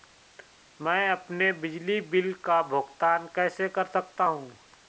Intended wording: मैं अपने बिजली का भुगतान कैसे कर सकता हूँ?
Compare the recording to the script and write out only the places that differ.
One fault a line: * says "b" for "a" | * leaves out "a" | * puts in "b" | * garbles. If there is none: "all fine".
* puts in "बिल"